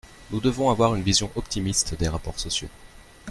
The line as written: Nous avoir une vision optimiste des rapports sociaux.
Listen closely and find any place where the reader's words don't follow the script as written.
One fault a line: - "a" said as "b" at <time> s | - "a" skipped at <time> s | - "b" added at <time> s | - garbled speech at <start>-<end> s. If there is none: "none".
- "devons" added at 0.4 s